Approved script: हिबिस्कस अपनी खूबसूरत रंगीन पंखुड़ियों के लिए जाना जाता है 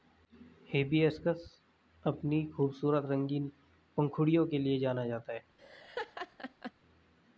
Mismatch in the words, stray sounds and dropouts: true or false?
true